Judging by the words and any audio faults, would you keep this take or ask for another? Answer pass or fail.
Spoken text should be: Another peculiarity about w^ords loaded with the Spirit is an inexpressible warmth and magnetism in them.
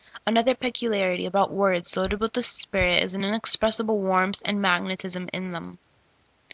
pass